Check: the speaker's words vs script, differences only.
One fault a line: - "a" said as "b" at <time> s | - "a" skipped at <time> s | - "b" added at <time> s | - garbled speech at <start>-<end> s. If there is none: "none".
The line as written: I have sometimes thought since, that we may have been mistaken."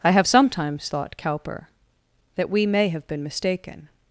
- "since" said as "cowper" at 1.2 s